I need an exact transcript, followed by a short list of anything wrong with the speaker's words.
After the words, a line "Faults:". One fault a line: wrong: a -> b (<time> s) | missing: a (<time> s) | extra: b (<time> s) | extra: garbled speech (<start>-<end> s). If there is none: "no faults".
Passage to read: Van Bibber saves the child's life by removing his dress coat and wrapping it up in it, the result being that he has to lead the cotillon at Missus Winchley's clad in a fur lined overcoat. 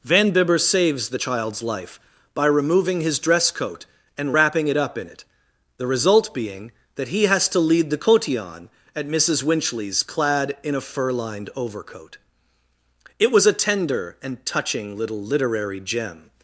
Van Bibber saves the child's life by removing his dress coat and wrapping it up in it, the result being that he has to lead the cotillon at Missus Winchley's clad in a fur lined overcoat. It was a tender and touching little literary gem
Faults:
extra: It was a tender and touching little literary gem (13.2 s)